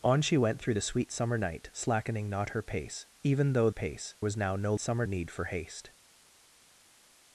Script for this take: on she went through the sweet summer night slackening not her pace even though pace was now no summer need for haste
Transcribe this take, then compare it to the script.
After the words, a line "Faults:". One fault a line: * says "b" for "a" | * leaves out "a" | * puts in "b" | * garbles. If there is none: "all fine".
on she went through the sweet summer night slackening not her pace even though pace was now no summer need for haste
Faults:
all fine